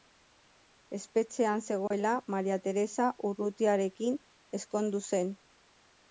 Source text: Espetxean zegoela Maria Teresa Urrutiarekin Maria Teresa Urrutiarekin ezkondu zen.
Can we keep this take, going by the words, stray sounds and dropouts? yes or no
no